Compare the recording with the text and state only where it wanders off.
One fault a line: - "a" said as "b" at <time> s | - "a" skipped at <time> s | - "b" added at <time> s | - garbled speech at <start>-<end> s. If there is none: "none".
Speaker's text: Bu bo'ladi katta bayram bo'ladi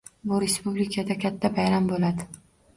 - "bo'ladi" said as "respublikada" at 0.4 s